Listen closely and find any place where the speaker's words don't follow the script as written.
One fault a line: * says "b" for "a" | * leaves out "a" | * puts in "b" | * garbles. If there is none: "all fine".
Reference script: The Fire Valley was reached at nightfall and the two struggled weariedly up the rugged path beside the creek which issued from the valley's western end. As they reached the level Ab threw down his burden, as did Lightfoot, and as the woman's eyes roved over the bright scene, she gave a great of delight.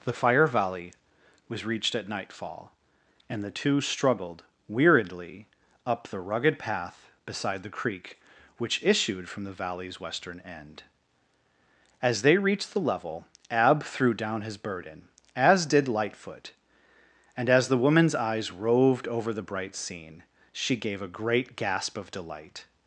* puts in "gasp"